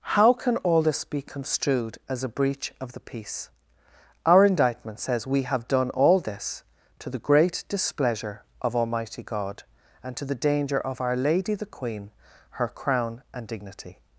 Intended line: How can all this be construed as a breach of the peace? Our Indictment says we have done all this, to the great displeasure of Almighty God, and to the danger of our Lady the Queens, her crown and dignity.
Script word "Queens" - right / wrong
wrong